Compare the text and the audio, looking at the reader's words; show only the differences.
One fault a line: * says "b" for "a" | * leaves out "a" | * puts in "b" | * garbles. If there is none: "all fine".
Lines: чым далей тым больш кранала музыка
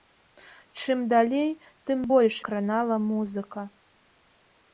all fine